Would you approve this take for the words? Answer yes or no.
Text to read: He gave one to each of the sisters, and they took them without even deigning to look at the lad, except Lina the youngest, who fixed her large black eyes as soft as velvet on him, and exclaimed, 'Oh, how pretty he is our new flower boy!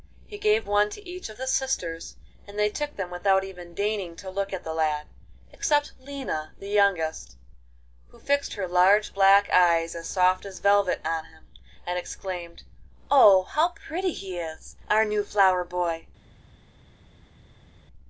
yes